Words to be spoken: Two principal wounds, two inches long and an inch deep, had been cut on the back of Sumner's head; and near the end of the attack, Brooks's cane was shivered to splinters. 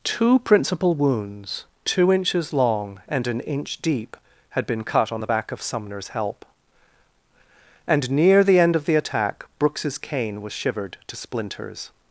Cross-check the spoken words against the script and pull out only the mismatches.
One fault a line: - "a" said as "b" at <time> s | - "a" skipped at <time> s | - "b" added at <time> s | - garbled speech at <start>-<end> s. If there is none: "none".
- "head" said as "help" at 6.1 s